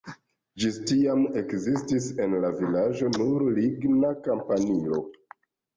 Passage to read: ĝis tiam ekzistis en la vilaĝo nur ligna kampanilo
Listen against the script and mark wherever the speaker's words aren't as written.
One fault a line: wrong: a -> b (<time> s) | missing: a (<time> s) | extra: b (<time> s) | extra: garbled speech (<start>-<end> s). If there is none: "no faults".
no faults